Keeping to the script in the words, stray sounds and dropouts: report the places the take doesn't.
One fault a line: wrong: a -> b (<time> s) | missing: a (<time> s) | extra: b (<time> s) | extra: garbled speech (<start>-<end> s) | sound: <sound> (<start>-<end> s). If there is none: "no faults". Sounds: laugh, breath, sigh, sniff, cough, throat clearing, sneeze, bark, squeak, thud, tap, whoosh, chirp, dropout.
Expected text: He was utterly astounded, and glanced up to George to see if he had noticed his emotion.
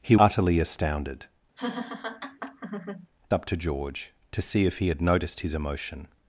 missing: was (0.1 s)
missing: and glanced (1.3 s)
sound: laugh (1.6-3.1 s)